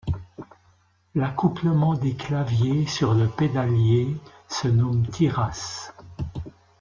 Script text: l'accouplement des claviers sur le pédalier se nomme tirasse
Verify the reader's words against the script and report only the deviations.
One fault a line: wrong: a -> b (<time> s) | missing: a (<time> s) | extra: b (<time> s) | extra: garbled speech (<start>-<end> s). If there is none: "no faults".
no faults